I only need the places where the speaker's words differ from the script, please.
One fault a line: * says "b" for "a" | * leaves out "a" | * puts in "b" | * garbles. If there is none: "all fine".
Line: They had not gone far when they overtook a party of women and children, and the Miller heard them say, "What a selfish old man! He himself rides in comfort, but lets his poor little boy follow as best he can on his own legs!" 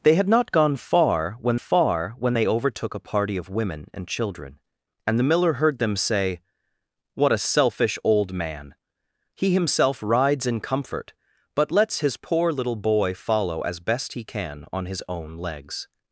* puts in "far when"